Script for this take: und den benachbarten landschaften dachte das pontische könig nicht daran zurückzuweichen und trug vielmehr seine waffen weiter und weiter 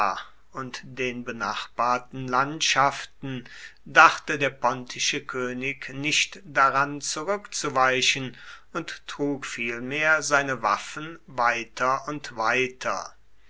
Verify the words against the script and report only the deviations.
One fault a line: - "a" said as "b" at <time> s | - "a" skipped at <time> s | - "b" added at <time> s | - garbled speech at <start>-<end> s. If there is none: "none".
- "das" said as "der" at 4.4 s